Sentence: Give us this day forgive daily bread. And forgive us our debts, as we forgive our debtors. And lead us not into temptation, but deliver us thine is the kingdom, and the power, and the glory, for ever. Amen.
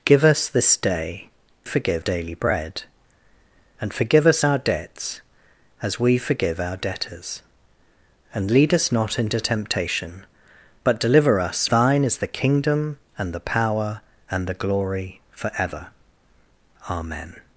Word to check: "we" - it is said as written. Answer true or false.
true